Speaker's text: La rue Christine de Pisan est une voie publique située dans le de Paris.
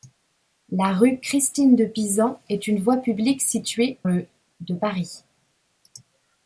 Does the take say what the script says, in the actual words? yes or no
no